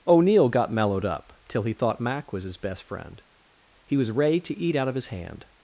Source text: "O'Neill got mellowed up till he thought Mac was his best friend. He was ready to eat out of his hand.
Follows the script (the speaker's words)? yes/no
yes